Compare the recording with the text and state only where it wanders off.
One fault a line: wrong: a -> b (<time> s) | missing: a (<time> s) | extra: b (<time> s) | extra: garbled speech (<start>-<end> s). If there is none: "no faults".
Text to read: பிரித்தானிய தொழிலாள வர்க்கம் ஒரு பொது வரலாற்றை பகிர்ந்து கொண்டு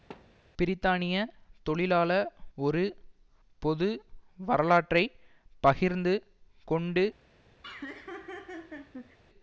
missing: வர்க்கம் (2.1 s)